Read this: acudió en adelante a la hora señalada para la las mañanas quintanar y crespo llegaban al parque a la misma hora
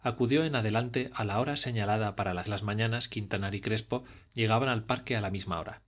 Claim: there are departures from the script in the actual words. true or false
false